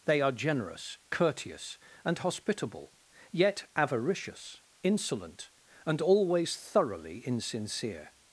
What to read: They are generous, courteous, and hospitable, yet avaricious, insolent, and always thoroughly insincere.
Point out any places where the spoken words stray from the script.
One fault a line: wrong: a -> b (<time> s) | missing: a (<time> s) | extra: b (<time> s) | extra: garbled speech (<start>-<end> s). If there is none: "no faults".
no faults